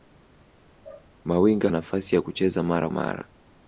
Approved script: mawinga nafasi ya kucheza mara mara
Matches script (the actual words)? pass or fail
pass